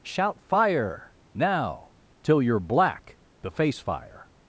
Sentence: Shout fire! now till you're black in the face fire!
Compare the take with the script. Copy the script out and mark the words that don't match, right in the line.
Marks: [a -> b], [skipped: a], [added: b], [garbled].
Shout fire! now till you're black [skipped: in] the face fire!